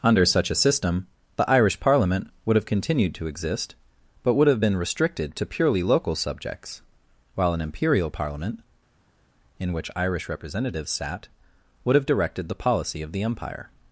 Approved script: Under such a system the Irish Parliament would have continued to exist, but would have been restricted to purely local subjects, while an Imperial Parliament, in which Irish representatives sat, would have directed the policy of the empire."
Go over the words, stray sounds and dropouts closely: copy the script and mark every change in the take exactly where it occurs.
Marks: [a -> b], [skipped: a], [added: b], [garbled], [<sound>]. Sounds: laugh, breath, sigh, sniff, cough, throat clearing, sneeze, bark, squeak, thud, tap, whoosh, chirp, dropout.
Under such a system the Irish Parliament would have continued to exist, but would have been restricted to purely local subjects, while an Imperial Parliament, in which Irish representatives sat, would have directed the policy of the empire."